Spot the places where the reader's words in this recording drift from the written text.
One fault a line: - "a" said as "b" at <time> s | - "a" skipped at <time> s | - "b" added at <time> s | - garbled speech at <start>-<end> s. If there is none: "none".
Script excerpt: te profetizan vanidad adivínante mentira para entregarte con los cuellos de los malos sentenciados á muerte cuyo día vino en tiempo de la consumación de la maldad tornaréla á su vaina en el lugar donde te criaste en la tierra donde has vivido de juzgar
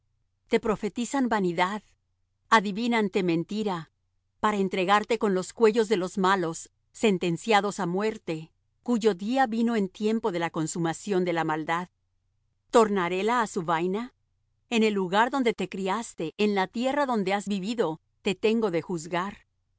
- "te tengo" added at 18.2 s